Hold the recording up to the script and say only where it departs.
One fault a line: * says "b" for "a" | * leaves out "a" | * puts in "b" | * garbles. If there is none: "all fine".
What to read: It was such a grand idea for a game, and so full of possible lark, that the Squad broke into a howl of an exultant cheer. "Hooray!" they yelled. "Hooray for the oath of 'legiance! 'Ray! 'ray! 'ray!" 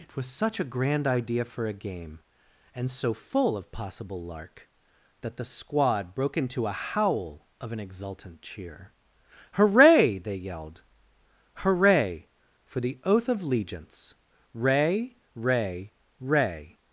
all fine